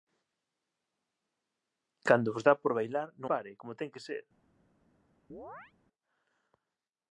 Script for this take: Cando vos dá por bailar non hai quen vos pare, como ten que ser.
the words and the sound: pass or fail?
fail